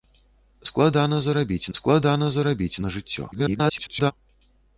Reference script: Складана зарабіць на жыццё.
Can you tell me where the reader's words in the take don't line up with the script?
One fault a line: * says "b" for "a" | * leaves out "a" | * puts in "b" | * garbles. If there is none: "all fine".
* puts in "складана зарабіць"
* garbles